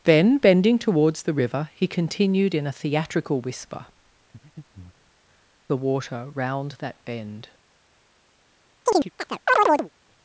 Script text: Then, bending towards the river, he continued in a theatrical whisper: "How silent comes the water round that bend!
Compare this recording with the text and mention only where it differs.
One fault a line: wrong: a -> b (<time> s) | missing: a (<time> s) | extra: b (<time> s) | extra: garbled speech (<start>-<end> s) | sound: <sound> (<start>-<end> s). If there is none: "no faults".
missing: How silent comes (3.9 s)
sound: breath (4.3-5.1 s)
sound: chirp (8.9-9.9 s)